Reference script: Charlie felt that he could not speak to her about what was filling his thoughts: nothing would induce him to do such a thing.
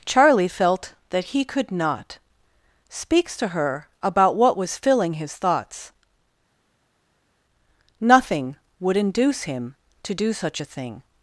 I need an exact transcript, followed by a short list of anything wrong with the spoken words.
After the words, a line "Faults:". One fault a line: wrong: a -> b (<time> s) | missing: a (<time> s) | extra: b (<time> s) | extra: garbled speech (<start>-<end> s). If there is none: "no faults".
Charlie felt that he could not speaks to her about what was filling his thoughts: nothing would induce him to do such a thing.
Faults:
wrong: speak -> speaks (2.9 s)